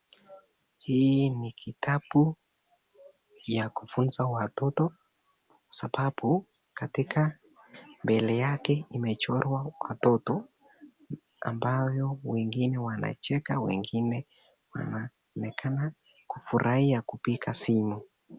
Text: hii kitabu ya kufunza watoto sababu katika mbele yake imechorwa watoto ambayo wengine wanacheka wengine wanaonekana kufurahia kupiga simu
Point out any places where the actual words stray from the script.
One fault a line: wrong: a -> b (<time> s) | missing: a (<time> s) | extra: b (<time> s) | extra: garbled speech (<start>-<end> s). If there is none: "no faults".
extra: ni (1.3 s)